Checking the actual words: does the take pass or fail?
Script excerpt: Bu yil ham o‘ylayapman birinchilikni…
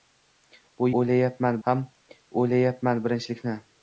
fail